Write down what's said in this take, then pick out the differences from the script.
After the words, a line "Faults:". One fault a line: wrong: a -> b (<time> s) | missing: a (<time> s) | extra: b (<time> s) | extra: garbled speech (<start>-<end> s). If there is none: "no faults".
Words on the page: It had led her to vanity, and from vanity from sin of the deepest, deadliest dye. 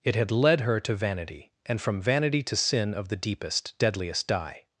It had led her to vanity, and from vanity to sin of the deepest, deadliest dye.
Faults:
wrong: from -> to (2.4 s)